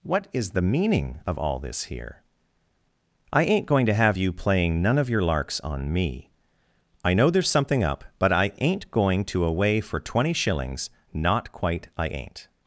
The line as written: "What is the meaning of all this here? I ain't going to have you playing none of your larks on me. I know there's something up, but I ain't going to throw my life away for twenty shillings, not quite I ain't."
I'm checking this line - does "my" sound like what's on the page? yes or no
no